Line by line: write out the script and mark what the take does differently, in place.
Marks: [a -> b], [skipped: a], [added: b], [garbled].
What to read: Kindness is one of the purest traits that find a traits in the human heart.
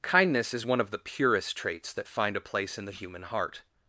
Kindness is one of the purest traits that find a [traits -> place] in the human heart.